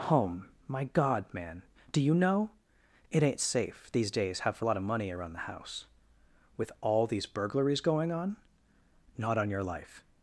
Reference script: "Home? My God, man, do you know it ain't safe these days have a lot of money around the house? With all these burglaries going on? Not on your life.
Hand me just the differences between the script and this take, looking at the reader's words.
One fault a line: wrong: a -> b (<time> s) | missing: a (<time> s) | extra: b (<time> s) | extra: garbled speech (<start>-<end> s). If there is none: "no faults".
no faults